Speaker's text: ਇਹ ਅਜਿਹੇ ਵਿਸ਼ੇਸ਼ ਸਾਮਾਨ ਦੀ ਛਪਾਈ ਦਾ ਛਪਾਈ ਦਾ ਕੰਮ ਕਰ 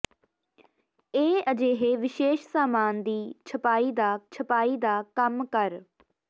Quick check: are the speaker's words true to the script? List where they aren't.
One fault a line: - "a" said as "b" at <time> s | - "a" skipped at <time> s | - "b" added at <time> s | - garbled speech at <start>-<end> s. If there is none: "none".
none